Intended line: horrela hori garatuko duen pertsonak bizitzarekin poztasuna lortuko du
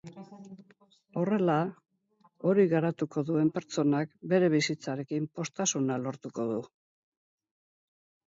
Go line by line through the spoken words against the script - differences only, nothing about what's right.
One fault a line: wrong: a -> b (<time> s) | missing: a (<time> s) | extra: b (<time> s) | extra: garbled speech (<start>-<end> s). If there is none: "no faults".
extra: bere (4.3 s)